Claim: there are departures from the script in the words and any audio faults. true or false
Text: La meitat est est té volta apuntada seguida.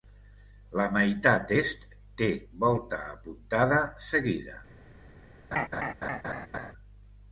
true